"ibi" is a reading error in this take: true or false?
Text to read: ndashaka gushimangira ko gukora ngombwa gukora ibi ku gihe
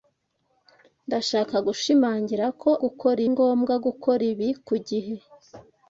false